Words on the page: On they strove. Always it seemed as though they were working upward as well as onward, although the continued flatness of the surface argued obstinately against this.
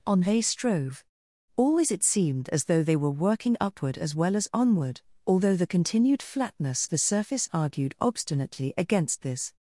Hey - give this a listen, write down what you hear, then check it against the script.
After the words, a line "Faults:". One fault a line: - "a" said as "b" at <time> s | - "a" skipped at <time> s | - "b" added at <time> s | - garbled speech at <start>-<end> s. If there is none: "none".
On they strove. Always it seemed as though they were working upward as well as onward, although the continued flatness the surface argued obstinately against this.
Faults:
- "of" skipped at 6.9 s